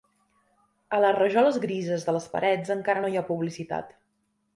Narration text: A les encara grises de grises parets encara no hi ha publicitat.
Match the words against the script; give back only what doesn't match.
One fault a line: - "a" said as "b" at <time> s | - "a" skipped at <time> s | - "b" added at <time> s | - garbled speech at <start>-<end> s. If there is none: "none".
- "encara" said as "rajoles" at 1.2 s
- "grises" said as "les" at 2.1 s